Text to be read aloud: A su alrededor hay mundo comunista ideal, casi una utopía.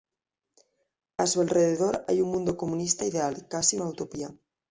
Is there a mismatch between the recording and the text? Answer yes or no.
no